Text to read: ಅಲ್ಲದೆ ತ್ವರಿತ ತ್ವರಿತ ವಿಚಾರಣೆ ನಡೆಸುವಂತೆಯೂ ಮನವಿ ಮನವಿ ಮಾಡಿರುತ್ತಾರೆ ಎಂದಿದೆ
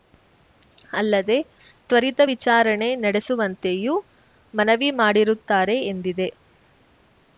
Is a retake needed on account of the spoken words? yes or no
yes